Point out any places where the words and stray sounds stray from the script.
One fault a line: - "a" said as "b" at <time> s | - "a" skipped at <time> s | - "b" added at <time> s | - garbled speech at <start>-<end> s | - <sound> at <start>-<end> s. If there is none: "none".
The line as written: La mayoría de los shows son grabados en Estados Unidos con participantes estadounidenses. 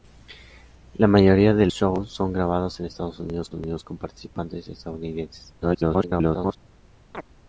- "los" skipped at 1.7 s
- "Unidos" added at 3.5 s
- garbled speech at 5.6-6.6 s
- chirp at 7.1-7.2 s